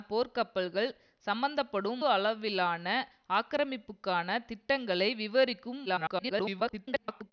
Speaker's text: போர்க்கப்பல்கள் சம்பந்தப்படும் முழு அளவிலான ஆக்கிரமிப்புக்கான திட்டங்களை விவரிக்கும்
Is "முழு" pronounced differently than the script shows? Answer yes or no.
yes